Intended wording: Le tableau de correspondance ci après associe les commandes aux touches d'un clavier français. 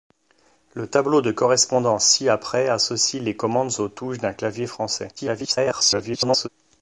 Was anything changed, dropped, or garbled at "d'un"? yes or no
no